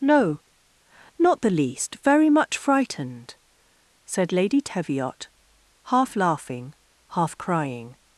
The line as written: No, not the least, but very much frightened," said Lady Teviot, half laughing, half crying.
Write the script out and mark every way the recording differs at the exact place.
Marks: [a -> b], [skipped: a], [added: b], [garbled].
No, not the least, [skipped: but] very much frightened," said Lady Teviot, half laughing, half crying.